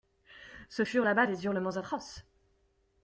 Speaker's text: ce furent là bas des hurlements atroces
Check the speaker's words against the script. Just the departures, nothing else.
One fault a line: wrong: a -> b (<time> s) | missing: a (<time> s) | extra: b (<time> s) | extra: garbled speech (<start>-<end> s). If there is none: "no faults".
no faults